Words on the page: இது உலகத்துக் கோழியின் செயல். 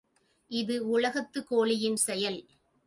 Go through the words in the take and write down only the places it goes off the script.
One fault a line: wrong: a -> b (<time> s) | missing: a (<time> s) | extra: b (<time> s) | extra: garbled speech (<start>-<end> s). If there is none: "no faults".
no faults